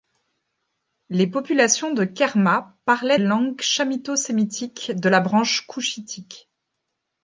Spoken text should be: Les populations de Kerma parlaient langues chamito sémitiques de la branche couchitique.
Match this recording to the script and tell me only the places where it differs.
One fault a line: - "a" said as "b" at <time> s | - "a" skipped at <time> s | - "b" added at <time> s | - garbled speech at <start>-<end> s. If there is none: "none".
none